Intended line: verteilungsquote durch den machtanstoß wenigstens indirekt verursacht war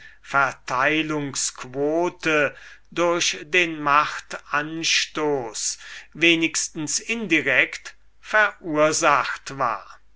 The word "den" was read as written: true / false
true